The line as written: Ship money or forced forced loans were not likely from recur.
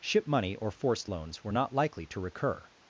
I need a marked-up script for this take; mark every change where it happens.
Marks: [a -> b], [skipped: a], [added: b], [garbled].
Ship money or forced [skipped: forced] loans were not likely [from -> to] recur.